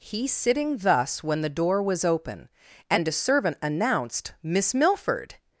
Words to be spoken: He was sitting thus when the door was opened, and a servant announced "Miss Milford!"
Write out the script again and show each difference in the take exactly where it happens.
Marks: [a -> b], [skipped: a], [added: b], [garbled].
He [skipped: was] sitting thus when the door was [opened, -> open] and a servant announced "Miss Milford!"